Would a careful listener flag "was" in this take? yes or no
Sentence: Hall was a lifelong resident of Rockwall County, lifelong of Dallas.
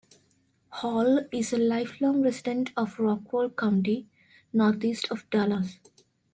yes